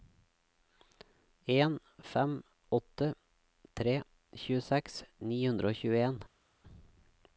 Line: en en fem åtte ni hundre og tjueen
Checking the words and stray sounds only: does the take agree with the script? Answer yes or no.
no